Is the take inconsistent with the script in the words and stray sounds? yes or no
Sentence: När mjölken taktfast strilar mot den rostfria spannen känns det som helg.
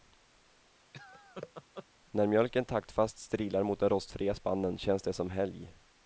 yes